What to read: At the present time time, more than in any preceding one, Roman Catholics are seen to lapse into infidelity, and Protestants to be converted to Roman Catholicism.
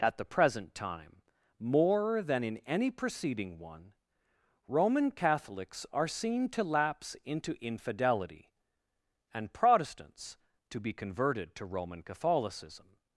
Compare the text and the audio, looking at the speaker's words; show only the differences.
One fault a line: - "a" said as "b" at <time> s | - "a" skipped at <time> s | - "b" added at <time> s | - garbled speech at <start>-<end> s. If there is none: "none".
- "time" skipped at 1.2 s